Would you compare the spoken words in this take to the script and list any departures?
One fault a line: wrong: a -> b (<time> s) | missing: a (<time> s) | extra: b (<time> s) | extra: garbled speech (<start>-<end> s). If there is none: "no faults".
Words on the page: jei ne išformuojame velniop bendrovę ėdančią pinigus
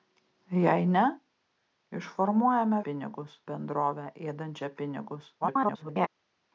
wrong: velniop -> pinigus (2.9 s)
extra: garbled speech (5.4-6.1 s)